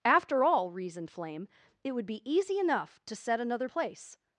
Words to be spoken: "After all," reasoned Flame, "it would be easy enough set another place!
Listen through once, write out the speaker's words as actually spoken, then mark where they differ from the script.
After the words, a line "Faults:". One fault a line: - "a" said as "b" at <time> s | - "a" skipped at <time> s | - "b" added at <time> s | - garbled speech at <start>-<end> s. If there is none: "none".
"After all," reasoned Flame, "it would be easy enough to set another place!
Faults:
- "to" added at 3.0 s